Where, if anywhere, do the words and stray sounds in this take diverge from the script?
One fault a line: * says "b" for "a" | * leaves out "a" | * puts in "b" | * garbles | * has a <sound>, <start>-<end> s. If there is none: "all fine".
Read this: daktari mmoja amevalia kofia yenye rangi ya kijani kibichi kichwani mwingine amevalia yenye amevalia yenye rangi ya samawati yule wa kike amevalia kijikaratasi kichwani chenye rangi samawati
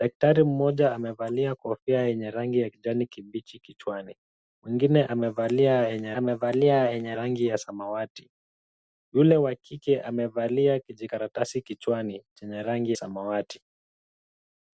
all fine